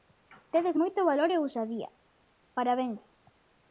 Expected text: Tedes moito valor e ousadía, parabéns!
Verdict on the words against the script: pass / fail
pass